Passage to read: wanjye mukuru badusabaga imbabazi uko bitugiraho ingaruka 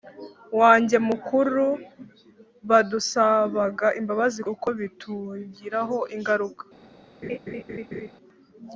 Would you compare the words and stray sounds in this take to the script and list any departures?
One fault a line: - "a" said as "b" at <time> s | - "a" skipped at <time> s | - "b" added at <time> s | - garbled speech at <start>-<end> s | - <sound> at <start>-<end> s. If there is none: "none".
- laugh at 7.2-8.1 s